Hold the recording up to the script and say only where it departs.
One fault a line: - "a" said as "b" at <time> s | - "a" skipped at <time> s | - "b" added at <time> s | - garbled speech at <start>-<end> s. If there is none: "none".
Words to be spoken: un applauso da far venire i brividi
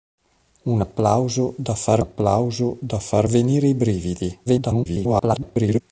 - "applauso da far" added at 2.0 s
- garbled speech at 4.5-5.8 s